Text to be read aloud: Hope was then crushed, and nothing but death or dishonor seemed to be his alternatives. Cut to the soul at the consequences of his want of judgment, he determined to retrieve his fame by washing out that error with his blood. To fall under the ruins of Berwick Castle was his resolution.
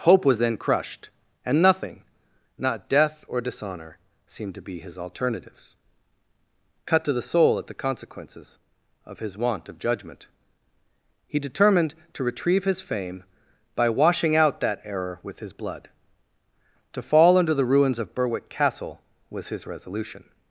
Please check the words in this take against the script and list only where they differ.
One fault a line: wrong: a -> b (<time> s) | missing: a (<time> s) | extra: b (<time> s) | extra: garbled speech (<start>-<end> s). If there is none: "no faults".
wrong: but -> not (2.6 s)